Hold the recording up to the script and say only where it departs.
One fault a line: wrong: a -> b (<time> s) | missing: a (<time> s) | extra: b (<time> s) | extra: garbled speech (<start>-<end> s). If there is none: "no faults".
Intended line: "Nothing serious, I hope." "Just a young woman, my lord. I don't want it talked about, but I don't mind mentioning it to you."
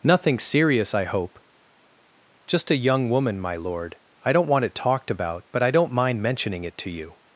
no faults